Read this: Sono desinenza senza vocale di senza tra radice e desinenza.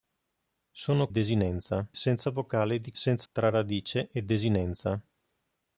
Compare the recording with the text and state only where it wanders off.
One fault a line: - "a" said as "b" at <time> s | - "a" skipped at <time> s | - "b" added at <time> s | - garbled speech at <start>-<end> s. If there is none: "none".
none